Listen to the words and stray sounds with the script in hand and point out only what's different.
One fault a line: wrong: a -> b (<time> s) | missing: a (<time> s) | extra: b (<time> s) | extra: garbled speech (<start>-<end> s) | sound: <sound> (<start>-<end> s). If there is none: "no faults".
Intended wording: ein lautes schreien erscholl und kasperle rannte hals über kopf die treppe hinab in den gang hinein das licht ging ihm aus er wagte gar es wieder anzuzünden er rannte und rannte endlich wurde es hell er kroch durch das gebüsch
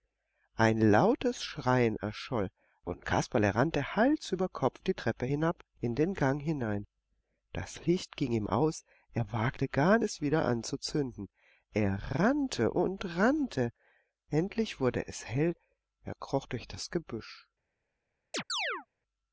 sound: chirp (18.3-18.9 s)